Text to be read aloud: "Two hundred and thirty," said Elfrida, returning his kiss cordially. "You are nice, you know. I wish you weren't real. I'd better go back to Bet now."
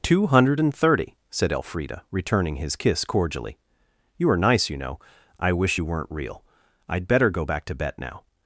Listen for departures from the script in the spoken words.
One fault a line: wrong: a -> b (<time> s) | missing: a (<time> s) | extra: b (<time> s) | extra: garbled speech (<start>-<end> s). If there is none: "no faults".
no faults